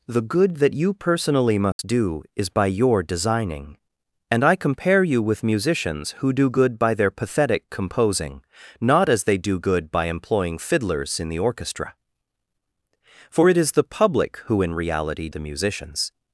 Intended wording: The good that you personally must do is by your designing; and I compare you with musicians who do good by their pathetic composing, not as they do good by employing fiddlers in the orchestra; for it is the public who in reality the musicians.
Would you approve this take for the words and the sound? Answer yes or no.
no